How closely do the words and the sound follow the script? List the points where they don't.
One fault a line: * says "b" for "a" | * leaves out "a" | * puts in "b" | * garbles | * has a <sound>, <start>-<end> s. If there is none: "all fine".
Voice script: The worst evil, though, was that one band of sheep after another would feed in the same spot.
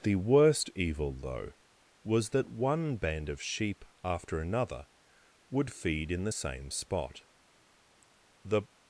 * puts in "The"